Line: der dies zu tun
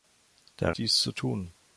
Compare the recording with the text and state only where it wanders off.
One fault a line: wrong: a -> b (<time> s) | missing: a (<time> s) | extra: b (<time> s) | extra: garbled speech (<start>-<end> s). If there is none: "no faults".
no faults